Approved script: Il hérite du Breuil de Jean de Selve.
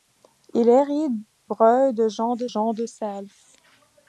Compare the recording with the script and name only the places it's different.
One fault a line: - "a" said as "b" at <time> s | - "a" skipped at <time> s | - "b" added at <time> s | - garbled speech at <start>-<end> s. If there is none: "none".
- "du Breuil" said as "Breuil de Jean" at 1.4 s